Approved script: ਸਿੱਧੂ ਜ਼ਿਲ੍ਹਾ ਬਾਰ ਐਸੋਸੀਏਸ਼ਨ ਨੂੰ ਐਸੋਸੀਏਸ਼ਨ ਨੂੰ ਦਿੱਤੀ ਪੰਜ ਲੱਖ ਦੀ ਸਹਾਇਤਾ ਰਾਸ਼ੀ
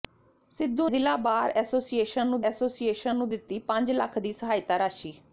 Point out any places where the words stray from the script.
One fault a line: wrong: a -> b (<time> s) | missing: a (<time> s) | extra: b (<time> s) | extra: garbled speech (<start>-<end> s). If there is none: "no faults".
no faults